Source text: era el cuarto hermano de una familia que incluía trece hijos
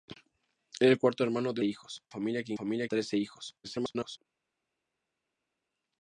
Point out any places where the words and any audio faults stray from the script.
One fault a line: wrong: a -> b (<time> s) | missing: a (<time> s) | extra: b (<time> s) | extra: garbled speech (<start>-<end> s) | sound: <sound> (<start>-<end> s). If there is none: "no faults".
wrong: una -> hijos (1.6 s)
wrong: incluía -> familia (2.5 s)
extra: garbled speech (3.6-4.2 s)